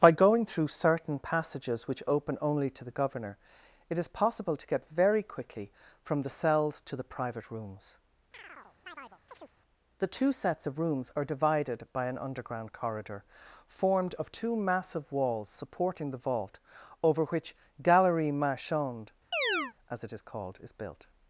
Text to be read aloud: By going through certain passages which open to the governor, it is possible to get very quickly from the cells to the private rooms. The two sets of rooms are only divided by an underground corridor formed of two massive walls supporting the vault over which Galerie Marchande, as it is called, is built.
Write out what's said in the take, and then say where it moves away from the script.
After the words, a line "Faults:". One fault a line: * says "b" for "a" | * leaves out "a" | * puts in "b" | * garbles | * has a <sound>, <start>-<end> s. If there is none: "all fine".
By going through certain passages which open only to the governor, it is possible to get very quickly from the cells to the private rooms. The two sets of rooms are divided by an underground corridor formed of two massive walls supporting the vault over which Galerie Marchande, as it is called, is built.
Faults:
* puts in "only"
* has a chirp, 8.3-9.6 s
* leaves out "only"
* has a chirp, 19.3-19.7 s